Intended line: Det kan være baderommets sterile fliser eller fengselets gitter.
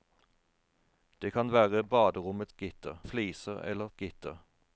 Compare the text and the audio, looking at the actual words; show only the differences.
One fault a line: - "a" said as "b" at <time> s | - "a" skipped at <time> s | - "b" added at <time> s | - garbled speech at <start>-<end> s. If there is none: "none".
- "sterile" said as "gitter" at 2.5 s
- "fengselets" skipped at 3.9 s